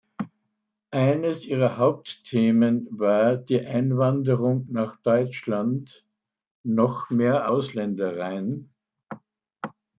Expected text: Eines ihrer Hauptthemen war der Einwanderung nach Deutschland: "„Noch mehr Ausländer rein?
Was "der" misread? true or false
true